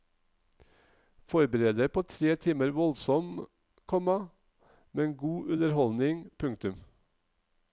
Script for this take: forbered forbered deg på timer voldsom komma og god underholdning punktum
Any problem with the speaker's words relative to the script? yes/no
yes